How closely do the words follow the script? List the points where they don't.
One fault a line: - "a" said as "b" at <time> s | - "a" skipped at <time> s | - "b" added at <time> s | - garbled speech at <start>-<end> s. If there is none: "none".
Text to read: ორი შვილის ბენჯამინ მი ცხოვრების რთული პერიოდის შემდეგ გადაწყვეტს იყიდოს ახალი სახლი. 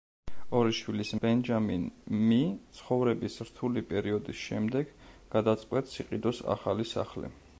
none